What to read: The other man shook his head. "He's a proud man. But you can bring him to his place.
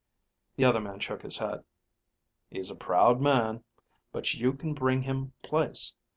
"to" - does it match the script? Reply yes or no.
no